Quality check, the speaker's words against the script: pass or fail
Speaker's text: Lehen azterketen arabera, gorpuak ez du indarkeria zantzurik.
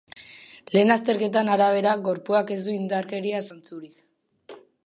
pass